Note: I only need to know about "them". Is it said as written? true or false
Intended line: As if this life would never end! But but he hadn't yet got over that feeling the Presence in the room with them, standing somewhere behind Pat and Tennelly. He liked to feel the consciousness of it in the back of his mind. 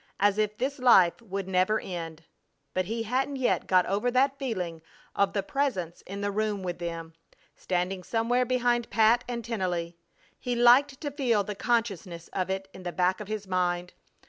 true